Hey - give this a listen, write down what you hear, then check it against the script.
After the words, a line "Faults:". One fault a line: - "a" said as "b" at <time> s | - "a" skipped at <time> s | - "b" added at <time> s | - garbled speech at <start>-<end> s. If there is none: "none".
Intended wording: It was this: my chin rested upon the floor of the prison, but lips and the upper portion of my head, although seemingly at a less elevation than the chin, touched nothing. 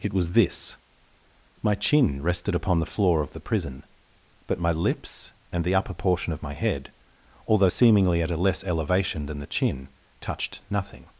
It was this: my chin rested upon the floor of the prison, but my lips and the upper portion of my head, although seemingly at a less elevation than the chin, touched nothing.
Faults:
- "my" added at 4.6 s